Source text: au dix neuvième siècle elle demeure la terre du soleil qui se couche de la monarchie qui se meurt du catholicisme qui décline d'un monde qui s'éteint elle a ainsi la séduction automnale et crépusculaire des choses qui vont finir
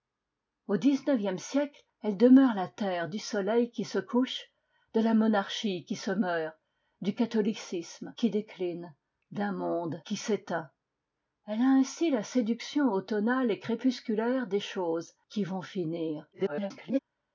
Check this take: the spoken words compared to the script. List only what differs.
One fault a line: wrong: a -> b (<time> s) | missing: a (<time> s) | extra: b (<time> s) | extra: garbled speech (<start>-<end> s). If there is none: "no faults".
extra: garbled speech (16.3-17.0 s)